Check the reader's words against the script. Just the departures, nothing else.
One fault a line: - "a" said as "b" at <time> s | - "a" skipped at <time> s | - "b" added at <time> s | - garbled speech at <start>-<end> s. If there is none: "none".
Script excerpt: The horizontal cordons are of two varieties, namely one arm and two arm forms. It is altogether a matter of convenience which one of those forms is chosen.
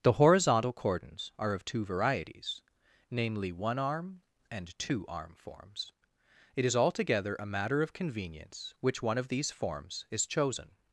- "those" said as "these" at 9.3 s